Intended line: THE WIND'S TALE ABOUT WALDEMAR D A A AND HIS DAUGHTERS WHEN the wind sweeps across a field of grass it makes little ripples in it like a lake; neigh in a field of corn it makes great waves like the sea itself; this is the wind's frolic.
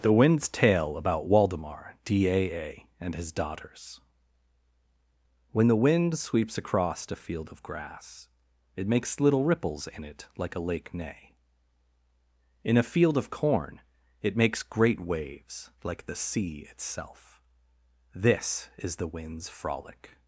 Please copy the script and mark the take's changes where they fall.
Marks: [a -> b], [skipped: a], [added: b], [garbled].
THE WIND'S TALE ABOUT WALDEMAR D A A AND HIS DAUGHTERS WHEN the wind sweeps across a field of grass it makes little ripples in it like a lake; neigh in a field of corn it makes great waves like the sea itself; this is the wind's frolic.